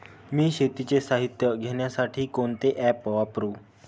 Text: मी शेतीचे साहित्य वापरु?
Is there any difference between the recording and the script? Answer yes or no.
yes